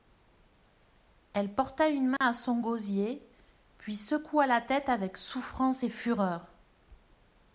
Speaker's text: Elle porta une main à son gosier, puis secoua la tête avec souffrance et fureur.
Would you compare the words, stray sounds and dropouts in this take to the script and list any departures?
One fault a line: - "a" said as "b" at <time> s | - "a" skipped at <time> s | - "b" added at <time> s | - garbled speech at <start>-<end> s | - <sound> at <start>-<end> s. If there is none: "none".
- dropout at 2.2-2.2 s